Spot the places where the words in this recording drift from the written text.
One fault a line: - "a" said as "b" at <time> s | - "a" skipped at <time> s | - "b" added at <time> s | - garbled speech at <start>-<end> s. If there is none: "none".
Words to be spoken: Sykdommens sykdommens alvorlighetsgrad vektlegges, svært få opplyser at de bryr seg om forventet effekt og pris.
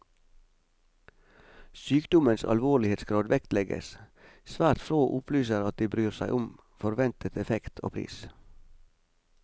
- "sykdommens" skipped at 2.5 s